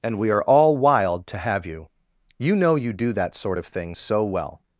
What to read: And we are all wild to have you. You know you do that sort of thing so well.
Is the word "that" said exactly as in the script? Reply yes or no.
yes